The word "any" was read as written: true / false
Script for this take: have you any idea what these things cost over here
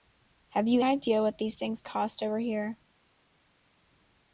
false